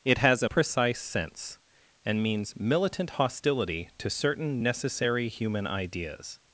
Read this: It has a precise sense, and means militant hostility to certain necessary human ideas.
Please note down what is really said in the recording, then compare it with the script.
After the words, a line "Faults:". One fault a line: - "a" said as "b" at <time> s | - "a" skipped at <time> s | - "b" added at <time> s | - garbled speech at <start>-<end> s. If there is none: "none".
It has a precise sense, and means militant hostility to certain necessary human ideas.
Faults:
none